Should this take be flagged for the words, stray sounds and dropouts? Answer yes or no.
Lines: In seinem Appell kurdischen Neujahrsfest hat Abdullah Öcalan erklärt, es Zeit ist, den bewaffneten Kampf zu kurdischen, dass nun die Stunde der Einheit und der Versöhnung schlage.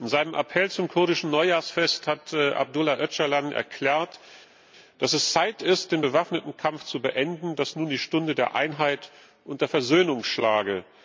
yes